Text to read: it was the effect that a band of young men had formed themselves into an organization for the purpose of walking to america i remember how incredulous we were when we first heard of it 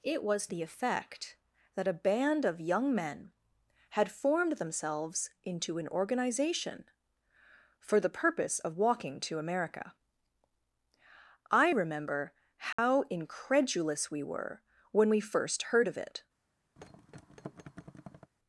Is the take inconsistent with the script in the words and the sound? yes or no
yes